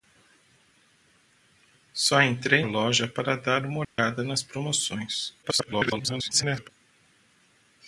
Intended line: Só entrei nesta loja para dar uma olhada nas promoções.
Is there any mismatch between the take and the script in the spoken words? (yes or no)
yes